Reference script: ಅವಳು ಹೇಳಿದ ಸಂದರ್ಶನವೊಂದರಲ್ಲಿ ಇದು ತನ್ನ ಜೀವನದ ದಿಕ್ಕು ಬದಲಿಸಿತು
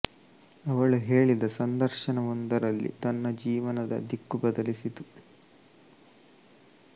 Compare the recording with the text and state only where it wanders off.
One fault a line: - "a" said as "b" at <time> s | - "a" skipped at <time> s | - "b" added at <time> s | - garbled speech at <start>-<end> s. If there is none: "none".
- "ಇದು" skipped at 2.9 s